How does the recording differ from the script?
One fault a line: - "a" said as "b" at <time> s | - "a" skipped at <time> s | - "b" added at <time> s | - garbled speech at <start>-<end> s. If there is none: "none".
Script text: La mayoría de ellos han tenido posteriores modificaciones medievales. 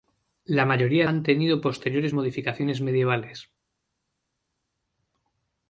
- "de ellos" skipped at 1.1 s